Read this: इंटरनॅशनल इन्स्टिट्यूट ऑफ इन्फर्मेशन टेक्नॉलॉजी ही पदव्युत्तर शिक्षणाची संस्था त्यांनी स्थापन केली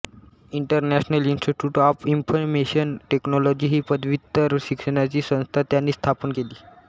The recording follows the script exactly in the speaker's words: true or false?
true